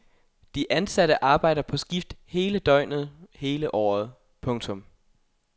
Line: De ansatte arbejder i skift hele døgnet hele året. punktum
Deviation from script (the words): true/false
true